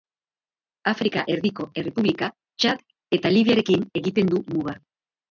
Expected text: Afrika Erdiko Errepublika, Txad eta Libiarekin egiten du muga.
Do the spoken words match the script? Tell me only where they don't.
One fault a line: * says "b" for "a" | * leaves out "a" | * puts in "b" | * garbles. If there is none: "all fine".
all fine